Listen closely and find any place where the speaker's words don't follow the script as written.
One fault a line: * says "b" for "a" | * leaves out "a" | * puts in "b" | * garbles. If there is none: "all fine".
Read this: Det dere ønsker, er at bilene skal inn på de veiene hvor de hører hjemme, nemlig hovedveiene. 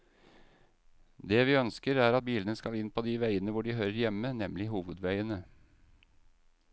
* says "vi" for "dere"